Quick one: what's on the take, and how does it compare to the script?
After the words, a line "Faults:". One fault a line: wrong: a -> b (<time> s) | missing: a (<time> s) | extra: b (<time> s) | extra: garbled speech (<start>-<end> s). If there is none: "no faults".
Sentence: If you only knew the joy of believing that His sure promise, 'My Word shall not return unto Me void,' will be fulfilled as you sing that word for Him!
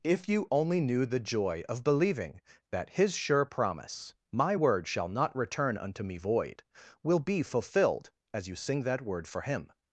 If you only knew the joy of believing that His sure promise, 'My Word shall not return unto Me void,' will be fulfilled as you sing that word for Him!
Faults:
no faults